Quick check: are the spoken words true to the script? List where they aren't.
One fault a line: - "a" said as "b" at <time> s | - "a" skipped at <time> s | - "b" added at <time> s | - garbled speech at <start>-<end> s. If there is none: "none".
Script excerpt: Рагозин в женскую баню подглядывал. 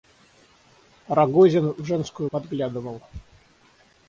- "баню" skipped at 2.3 s